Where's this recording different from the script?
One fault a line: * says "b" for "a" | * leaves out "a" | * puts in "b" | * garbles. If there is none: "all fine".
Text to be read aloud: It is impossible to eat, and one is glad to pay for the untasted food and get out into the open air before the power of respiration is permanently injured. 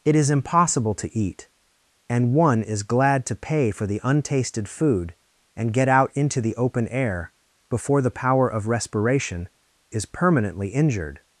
all fine